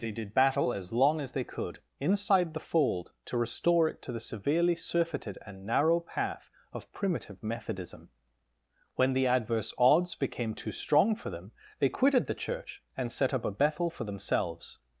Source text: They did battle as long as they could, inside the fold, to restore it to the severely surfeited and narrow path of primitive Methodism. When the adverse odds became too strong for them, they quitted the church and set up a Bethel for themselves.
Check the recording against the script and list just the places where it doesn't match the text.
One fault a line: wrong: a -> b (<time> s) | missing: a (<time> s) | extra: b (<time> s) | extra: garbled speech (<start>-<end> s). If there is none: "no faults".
no faults